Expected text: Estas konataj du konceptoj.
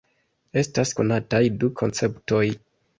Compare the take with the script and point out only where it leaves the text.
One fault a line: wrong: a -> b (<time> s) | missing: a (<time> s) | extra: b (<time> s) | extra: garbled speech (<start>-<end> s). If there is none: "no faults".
no faults